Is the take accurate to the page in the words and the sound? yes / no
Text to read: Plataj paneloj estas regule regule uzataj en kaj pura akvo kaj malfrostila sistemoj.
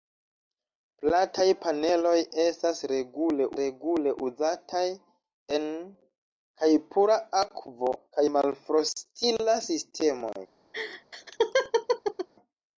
no